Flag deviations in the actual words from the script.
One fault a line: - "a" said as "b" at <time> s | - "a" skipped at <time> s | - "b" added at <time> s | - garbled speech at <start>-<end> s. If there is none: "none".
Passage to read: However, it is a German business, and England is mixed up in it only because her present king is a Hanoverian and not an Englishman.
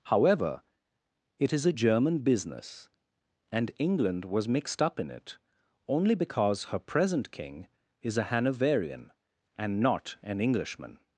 - "is" said as "was" at 4.2 s